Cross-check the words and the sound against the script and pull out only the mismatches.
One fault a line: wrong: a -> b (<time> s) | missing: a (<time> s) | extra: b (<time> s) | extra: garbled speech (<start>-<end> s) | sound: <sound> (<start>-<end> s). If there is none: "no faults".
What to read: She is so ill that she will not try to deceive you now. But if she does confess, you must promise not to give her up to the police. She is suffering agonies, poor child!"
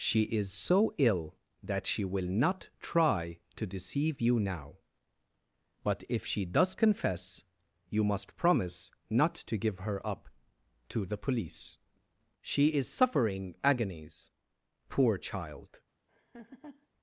sound: laugh (16.1-16.9 s)